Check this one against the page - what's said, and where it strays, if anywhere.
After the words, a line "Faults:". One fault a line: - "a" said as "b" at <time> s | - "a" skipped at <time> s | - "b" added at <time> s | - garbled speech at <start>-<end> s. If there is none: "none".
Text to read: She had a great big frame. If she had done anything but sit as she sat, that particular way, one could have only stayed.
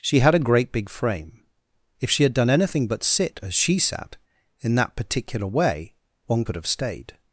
She had a great big frame. If she had done anything but sit as she sat, in that particular way, one could have stayed.
Faults:
- "in" added at 4.6 s
- "only" skipped at 6.7 s